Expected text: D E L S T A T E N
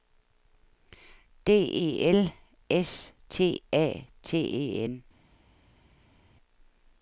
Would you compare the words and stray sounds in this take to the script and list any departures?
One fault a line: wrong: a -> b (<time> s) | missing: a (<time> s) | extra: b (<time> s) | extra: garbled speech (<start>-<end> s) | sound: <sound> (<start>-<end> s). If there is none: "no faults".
no faults